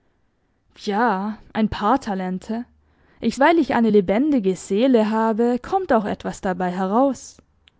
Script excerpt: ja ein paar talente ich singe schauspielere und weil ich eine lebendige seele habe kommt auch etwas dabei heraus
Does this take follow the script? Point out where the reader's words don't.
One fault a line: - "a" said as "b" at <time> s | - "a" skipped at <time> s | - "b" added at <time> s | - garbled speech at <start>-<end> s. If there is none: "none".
- "singe schauspielere und" skipped at 3.4 s